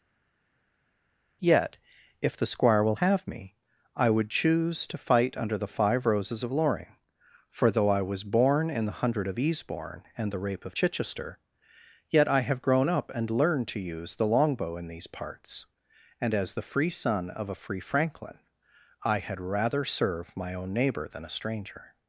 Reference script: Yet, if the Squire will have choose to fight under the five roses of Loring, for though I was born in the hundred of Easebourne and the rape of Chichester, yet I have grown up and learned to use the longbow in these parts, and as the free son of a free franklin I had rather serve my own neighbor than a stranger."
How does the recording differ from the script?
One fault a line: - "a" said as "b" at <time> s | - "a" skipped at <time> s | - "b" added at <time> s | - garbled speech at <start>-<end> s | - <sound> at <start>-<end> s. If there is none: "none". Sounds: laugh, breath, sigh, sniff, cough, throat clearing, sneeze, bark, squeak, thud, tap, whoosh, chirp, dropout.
- "me I would" added at 3.3 s